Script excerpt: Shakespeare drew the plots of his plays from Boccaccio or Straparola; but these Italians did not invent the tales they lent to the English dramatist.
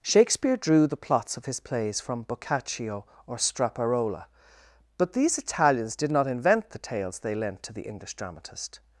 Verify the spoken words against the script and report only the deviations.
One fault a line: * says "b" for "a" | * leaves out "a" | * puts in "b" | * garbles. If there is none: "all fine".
all fine